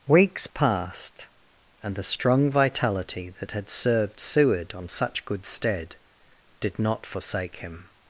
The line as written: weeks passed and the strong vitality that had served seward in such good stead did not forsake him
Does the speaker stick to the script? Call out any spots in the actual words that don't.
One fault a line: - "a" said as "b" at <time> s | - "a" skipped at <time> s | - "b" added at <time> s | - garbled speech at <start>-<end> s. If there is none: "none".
- "in" said as "on" at 4.7 s